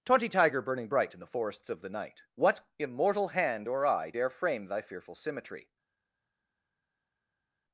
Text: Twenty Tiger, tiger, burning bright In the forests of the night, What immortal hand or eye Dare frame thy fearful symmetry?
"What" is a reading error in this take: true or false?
false